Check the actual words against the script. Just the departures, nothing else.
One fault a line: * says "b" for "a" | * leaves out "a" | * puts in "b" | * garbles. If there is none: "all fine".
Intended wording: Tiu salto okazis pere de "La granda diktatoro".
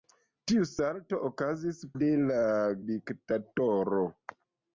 * leaves out "pere"
* leaves out "granda"